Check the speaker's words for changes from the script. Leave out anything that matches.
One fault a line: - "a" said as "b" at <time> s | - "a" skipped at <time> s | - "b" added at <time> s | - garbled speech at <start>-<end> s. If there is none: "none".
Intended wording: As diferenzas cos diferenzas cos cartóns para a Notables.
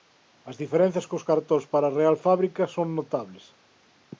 - "diferenzas cos" skipped at 1.3 s
- "Real Fábrica son" added at 2.0 s